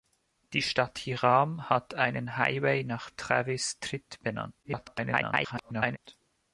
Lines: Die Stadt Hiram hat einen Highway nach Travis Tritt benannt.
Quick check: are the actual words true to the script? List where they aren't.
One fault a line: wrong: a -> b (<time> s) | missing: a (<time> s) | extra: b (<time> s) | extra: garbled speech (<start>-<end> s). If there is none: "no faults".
extra: garbled speech (4.6-6.0 s)